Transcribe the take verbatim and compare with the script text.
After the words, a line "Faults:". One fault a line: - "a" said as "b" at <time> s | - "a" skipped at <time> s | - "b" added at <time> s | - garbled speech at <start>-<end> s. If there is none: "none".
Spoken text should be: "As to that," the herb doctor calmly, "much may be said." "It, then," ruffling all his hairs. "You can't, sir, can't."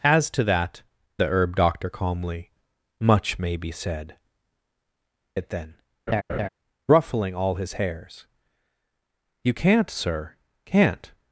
"As to that," the herb doctor calmly, "much may be said." "It, then," ruffling all his hairs. "You can't, sir, can't."
Faults:
none